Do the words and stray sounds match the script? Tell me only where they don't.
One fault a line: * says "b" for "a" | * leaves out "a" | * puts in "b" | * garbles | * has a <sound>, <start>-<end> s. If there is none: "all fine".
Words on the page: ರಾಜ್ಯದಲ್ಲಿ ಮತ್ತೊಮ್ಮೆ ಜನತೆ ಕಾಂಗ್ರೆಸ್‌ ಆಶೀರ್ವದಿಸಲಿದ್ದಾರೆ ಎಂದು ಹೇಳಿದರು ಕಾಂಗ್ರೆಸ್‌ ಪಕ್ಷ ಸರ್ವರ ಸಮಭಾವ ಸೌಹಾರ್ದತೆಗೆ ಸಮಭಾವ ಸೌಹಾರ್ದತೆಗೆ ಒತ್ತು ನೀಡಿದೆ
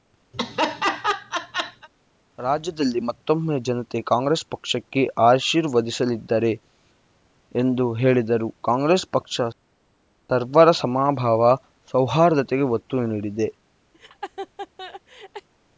* has a laugh, 0.3-1.9 s
* puts in "ಪಕ್ಷಕ್ಕೆ"
* leaves out "ಸಮಭಾವ ಸೌಹಾರ್ದತೆಗೆ"
* has a laugh, 13.9-15.5 s